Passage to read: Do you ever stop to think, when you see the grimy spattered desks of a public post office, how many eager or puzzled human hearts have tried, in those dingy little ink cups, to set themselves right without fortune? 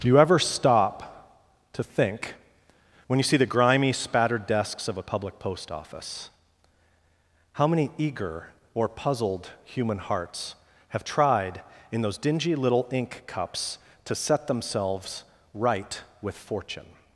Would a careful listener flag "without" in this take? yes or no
yes